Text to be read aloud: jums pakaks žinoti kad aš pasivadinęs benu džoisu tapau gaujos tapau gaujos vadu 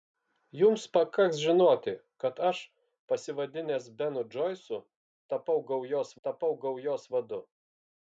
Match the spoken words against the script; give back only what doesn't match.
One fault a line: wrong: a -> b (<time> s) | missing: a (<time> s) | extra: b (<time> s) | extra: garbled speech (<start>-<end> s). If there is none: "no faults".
no faults